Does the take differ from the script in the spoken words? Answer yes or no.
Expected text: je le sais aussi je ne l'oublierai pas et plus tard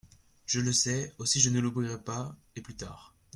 no